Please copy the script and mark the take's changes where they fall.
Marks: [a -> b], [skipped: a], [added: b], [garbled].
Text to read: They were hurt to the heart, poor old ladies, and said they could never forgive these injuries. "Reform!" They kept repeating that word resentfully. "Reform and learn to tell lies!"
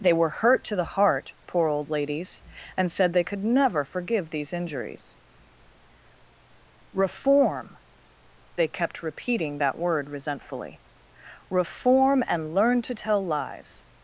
They were hurt to the heart, poor old ladies, and said they could never forgive these injuries. "Reform!" They kept repeating that word resentfully. "Reform and learn to tell lies!"